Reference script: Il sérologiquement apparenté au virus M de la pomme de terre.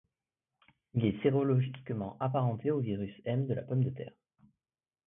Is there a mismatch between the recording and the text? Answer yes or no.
yes